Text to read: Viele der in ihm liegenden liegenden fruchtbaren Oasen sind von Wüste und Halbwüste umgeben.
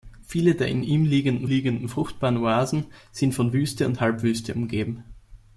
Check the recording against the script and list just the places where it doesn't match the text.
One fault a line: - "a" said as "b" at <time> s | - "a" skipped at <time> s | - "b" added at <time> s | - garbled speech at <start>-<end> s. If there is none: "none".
none